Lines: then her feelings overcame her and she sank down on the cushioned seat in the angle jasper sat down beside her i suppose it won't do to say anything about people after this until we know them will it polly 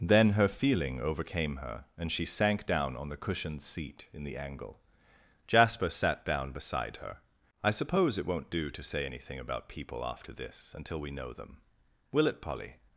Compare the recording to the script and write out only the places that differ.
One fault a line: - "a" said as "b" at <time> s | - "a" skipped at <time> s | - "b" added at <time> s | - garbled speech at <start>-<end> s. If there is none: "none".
- "feelings" said as "feeling" at 0.5 s